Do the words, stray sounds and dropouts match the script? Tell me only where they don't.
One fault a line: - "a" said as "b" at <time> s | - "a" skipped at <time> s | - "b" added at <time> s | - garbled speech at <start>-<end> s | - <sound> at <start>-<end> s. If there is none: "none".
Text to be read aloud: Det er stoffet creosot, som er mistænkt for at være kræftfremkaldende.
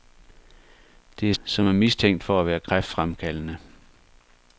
- "stoffet creosot" skipped at 1.3 s